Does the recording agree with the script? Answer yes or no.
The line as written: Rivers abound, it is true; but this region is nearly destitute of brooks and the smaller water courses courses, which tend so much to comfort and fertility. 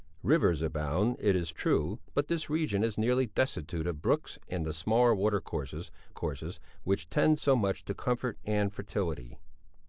yes